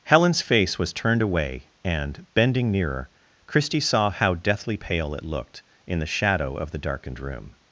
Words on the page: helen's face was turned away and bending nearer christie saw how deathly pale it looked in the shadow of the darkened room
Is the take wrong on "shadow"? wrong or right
right